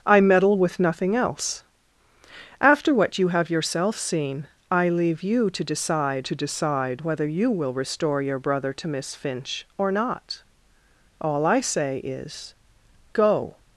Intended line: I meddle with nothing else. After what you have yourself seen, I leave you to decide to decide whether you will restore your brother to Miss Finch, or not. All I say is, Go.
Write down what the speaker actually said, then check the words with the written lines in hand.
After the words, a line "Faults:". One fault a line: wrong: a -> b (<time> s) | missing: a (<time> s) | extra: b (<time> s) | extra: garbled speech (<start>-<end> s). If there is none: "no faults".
I meddle with nothing else. After what you have yourself seen, I leave you to decide to decide whether you will restore your brother to Miss Finch, or not. All I say is, Go.
Faults:
no faults